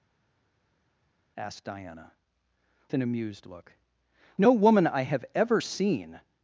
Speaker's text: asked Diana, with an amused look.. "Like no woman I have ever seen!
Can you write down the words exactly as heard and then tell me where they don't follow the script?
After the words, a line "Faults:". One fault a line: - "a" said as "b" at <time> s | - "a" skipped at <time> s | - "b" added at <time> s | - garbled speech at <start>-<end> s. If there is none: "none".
asked Diana, an amused look.. "No woman I have ever seen!
Faults:
- "with" skipped at 2.1 s
- "Like" skipped at 3.7 s